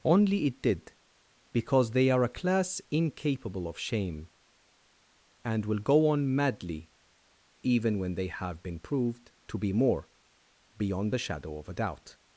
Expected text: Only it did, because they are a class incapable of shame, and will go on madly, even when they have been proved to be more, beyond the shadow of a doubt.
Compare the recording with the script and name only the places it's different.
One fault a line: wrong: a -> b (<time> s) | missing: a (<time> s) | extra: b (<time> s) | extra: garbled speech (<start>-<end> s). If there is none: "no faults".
no faults